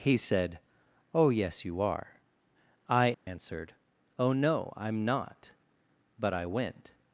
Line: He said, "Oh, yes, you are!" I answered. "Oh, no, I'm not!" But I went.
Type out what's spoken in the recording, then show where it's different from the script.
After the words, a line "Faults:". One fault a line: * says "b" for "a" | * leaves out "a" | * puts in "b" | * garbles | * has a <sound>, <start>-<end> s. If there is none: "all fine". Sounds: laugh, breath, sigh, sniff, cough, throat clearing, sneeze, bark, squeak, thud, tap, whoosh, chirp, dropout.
He said, "Oh, yes, you are!" I answered. "Oh, no, I'm not!" But I went.
Faults:
* has a dropout, 3.1-3.3 s